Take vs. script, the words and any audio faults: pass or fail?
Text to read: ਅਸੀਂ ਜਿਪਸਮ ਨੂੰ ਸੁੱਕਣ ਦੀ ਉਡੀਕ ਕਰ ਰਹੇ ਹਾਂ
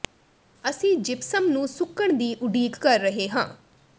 pass